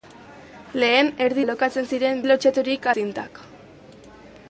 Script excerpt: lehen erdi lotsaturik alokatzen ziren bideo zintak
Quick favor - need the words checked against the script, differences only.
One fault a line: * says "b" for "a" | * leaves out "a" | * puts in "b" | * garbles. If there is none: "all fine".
* leaves out "lotsaturik"
* says "lotsaturik" for "bideo"